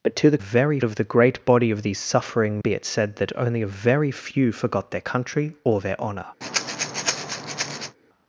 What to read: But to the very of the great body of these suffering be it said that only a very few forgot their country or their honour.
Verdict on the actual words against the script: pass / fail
pass